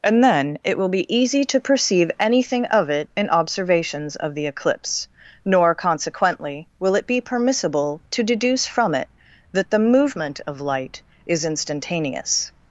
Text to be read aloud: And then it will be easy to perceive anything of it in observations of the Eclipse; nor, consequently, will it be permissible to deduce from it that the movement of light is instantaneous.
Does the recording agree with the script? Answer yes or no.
yes